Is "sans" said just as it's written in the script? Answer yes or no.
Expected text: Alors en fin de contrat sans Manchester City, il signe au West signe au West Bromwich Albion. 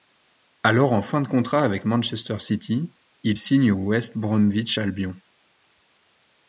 no